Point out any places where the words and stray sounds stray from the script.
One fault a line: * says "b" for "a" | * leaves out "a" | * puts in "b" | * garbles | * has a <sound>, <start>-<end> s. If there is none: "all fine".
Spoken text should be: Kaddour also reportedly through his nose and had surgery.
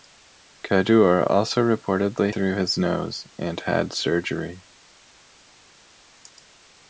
all fine